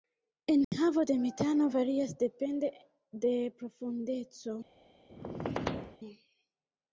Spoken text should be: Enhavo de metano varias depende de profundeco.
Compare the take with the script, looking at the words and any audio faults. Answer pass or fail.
fail